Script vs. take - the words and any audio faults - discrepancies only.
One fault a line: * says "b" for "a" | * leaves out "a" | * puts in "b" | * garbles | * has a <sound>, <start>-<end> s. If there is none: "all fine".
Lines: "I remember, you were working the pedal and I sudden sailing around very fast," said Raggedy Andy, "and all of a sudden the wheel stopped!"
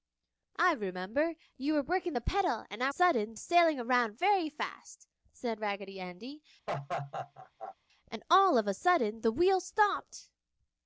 * has a laugh, 6.7-7.8 s